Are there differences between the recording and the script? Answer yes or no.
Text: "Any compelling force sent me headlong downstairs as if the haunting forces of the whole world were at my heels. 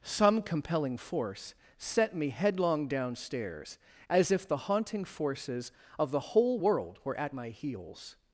yes